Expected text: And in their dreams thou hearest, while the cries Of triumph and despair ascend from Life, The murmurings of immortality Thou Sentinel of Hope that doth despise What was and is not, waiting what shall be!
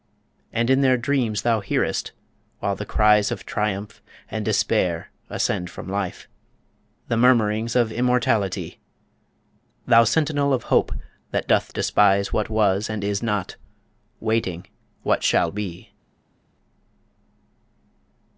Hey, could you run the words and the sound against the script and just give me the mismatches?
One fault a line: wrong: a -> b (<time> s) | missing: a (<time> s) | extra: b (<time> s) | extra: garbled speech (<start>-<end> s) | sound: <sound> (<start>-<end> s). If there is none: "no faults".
no faults